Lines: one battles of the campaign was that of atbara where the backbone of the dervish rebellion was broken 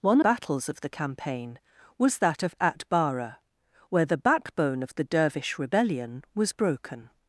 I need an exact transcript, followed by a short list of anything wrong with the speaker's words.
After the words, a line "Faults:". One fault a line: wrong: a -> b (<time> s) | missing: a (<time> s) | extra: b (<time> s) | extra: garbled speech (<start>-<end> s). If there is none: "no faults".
one battles of the campaign was that of atbara where the backbone of the dervish rebellion was broken
Faults:
no faults